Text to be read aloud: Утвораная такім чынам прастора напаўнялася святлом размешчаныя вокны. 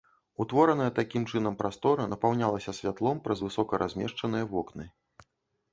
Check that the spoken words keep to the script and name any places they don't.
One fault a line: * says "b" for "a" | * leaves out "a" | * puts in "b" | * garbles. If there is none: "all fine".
* puts in "праз высока"